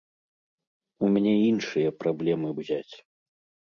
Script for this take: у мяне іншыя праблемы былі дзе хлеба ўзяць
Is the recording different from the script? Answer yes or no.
yes